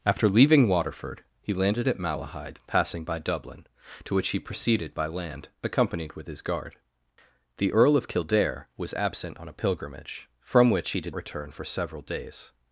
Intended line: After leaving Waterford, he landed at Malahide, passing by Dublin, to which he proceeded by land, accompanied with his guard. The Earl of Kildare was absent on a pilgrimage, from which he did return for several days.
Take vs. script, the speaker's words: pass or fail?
pass